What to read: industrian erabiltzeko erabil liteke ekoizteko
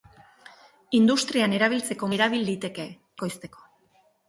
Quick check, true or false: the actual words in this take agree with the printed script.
true